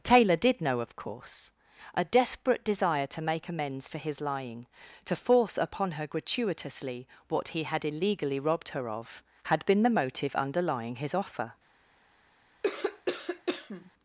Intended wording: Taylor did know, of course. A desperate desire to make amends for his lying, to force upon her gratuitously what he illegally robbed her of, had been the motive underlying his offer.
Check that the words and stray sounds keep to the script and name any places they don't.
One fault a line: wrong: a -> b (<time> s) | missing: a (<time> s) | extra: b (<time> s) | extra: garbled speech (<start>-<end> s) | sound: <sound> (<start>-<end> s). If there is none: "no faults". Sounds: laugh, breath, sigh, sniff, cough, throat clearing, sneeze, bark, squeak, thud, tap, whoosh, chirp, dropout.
extra: had (7.6 s)
sound: cough (12.6-13.9 s)